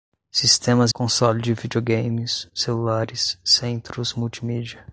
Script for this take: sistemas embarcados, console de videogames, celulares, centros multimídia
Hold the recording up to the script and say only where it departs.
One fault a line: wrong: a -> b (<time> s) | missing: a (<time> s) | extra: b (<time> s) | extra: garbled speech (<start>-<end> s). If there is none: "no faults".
missing: embarcados (0.9 s)